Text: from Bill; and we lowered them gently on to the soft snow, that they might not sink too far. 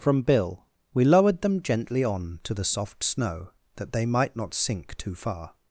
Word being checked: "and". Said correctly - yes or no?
no